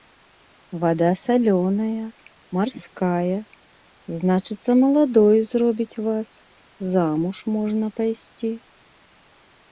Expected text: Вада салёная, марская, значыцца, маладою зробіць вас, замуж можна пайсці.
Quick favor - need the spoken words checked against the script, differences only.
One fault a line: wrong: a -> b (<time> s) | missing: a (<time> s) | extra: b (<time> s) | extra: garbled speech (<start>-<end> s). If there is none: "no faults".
no faults